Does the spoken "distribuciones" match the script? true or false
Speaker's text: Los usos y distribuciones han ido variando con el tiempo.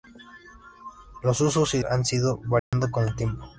false